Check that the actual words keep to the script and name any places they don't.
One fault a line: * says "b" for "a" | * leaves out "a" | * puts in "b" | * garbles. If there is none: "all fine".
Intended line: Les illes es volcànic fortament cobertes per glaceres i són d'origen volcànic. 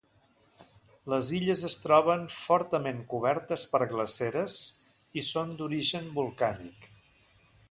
* says "troben" for "volcànic"